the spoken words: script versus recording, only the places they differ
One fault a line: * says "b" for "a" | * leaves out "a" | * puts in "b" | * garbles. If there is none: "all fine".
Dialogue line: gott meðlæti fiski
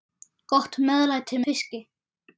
all fine